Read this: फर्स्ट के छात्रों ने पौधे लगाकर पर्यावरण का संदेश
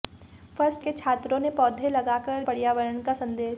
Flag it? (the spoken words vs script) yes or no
no